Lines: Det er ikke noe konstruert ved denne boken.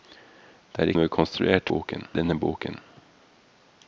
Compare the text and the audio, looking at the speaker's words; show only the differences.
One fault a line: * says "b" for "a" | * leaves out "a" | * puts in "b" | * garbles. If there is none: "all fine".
* leaves out "ikke"
* says "boken" for "ved"